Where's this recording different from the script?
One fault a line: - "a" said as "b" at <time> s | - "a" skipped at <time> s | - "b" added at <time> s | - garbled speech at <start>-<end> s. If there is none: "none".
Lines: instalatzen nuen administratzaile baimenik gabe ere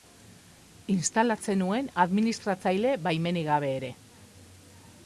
none